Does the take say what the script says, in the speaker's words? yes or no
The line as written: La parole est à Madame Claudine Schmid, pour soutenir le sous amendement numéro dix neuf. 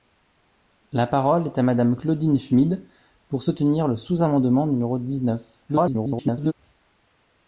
no